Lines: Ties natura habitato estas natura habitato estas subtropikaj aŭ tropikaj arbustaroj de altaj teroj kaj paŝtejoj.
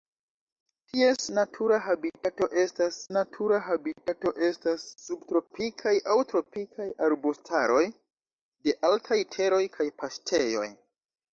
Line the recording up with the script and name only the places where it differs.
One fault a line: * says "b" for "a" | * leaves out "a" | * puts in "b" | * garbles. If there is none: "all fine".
all fine